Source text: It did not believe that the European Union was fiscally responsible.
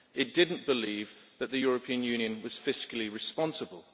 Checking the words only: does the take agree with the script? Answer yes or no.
yes